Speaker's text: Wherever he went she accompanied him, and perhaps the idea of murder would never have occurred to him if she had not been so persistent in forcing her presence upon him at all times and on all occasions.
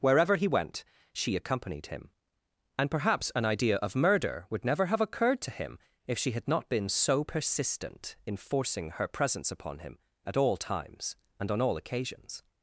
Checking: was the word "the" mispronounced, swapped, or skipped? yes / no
yes